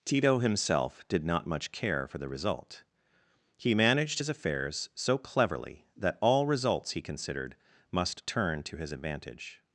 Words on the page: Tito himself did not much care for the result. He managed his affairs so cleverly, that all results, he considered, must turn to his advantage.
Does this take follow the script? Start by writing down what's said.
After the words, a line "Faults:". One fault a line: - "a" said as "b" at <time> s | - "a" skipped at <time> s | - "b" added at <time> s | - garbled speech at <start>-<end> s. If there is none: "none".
Tito himself did not much care for the result. He managed his affairs so cleverly, that all results, he considered, must turn to his advantage.
Faults:
none